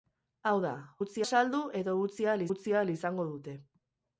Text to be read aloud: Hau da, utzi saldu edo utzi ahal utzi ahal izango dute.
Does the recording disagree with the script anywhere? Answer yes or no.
no